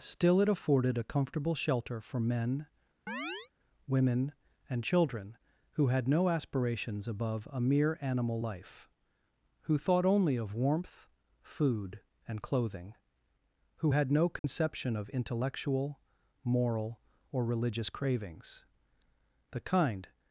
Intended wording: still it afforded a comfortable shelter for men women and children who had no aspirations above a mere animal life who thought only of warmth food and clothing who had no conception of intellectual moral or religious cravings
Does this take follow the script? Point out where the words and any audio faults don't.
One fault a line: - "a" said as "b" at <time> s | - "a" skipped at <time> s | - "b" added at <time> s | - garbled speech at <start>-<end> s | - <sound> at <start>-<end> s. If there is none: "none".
- chirp at 3.1-3.5 s
- dropout at 14.4-14.4 s
- "the kind" added at 19.5 s